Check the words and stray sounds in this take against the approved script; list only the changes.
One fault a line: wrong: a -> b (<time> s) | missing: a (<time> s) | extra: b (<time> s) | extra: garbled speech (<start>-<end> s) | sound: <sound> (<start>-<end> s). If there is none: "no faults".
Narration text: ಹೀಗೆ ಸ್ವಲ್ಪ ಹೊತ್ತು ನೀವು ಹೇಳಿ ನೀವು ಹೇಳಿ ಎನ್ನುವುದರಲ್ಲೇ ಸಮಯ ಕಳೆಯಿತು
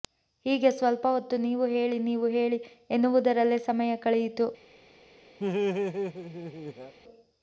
sound: laugh (5.4-6.9 s)